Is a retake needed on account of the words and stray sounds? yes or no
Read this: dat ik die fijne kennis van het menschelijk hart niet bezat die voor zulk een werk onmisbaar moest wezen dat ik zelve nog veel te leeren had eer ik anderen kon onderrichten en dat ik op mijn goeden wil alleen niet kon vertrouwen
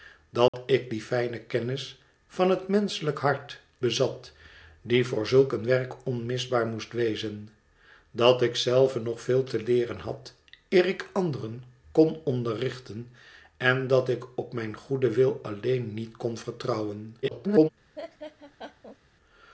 yes